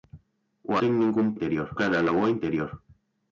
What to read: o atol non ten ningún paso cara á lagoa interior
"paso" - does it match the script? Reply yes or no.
no